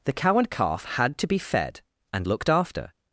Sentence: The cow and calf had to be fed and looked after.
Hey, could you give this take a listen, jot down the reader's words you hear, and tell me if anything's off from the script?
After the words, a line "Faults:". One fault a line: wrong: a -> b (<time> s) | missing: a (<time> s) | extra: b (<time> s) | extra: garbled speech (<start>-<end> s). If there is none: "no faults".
The cow and calf had to be fed and looked after.
Faults:
no faults